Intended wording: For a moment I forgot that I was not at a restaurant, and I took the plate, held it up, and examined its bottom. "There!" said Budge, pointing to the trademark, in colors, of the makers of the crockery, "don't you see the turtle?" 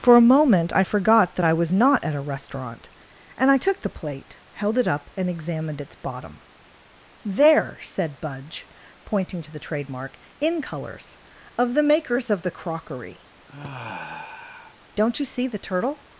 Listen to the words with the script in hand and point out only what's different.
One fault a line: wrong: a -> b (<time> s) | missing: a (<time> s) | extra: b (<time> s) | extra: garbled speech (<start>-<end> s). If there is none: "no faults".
no faults